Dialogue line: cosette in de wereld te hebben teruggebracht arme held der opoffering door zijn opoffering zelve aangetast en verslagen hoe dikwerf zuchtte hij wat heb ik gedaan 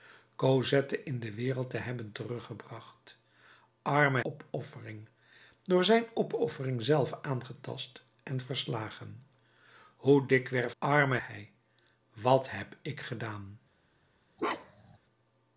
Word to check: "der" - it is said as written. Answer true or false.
false